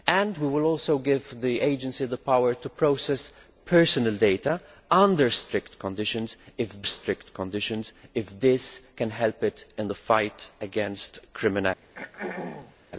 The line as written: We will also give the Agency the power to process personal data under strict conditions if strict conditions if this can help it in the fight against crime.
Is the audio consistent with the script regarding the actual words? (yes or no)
yes